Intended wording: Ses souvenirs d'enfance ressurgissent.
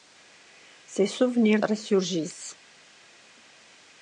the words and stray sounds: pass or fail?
fail